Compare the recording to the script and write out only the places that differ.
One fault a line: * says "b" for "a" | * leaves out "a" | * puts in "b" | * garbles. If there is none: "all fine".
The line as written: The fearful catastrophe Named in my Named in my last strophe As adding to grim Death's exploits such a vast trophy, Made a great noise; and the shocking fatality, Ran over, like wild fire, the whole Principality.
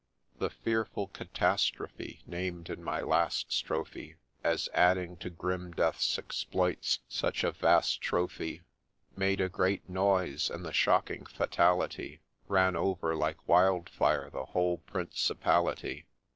* leaves out "Named in my"